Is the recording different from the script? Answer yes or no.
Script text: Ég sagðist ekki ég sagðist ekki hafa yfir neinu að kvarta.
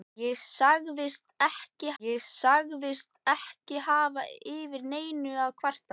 no